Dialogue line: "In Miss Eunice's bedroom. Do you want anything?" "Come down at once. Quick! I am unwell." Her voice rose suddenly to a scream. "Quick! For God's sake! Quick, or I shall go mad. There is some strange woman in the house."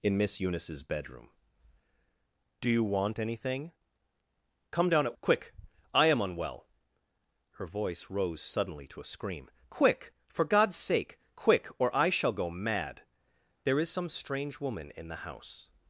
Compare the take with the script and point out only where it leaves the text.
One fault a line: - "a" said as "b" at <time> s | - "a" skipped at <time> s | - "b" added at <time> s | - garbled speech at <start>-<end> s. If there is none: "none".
- "once" skipped at 5.2 s